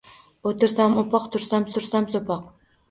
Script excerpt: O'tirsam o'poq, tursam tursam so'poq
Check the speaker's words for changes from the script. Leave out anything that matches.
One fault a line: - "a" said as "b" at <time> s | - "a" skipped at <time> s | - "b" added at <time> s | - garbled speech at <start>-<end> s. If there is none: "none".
none